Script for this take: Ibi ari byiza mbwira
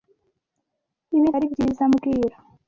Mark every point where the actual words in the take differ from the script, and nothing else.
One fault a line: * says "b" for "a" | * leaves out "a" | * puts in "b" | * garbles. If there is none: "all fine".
all fine